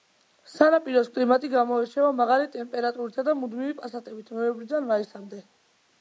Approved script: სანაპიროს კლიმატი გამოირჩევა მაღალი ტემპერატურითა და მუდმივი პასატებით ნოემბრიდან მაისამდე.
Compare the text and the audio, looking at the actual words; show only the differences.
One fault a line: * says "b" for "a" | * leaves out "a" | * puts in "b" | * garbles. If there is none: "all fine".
all fine